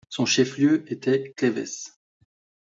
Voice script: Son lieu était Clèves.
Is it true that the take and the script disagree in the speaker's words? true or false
true